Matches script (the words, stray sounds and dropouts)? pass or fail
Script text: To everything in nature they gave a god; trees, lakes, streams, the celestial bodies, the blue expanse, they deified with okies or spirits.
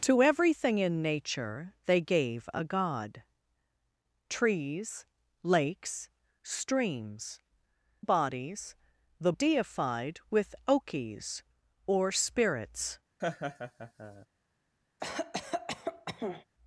fail